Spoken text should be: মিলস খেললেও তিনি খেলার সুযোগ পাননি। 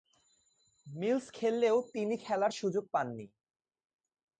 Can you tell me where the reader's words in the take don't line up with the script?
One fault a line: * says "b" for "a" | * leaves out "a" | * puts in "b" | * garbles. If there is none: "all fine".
all fine